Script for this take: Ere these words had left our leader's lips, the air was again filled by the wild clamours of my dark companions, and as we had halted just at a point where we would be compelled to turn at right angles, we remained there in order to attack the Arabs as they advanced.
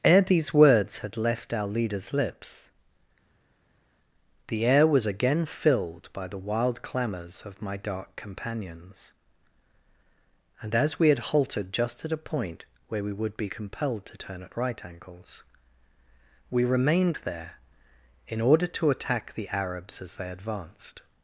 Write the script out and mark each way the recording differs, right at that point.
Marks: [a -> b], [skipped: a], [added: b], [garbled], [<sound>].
Ere these words had left our leader's lips, the air was again filled by the wild clamours of my dark companions, and as we had halted just at a point where we would be compelled to turn at right angles, we remained there in order to attack the Arabs as they advanced.